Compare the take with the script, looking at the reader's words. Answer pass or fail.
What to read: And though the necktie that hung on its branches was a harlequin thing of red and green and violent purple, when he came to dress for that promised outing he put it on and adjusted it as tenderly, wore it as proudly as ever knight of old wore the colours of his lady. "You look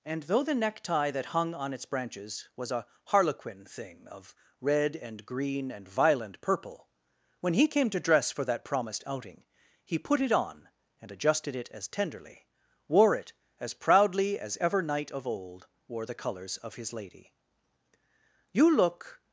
pass